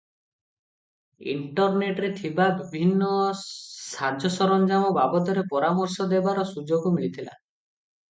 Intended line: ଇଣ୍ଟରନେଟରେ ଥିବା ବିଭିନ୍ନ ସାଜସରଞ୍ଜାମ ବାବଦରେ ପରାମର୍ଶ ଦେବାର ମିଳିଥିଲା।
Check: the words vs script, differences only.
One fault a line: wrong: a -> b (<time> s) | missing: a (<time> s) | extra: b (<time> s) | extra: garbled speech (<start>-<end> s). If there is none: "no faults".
extra: ସୁଯୋଗ (6.5 s)